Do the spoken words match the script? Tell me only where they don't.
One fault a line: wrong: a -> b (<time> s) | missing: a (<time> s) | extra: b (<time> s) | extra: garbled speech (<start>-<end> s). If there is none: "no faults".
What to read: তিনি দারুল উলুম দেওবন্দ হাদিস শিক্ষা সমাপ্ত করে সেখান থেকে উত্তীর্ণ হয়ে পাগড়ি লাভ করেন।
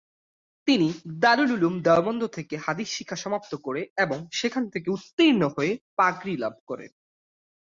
extra: থেকে (2.3 s)
extra: এবং (4.0 s)